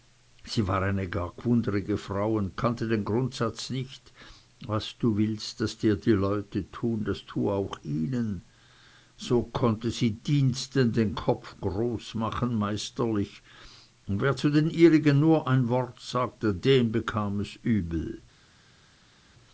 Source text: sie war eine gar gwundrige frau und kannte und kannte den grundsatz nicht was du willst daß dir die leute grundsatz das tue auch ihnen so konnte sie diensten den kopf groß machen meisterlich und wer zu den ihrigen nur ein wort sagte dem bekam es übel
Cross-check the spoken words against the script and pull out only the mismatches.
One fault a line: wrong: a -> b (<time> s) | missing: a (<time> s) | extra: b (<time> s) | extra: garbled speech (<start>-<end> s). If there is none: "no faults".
missing: und kannte (2.9 s)
wrong: grundsatz -> tun (6.7 s)